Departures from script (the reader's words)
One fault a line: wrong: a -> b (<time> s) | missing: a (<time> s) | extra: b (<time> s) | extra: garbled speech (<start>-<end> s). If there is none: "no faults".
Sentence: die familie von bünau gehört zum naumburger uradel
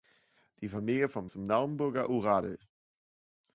missing: bünau gehört (1.3 s)